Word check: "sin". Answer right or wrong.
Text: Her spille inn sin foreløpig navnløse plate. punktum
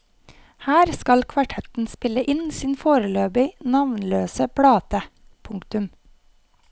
right